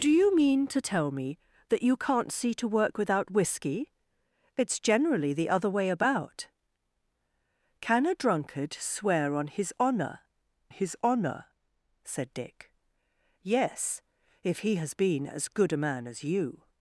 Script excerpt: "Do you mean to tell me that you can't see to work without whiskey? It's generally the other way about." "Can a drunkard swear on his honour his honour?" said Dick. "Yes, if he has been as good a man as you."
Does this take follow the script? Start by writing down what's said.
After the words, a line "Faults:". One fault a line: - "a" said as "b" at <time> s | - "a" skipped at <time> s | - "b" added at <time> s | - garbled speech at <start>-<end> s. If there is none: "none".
"Do you mean to tell me that you can't see to work without whiskey? It's generally the other way about." "Can a drunkard swear on his honour his honour?" said Dick. "Yes, if he has been as good a man as you."
Faults:
none